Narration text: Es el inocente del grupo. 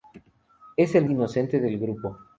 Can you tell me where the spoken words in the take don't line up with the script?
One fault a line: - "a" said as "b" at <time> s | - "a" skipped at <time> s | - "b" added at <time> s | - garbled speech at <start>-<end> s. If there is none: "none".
none